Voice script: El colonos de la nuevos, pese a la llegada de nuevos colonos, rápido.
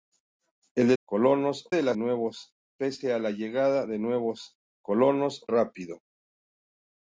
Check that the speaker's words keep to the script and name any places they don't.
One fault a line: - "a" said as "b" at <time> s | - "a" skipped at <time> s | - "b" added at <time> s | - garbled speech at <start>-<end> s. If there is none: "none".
none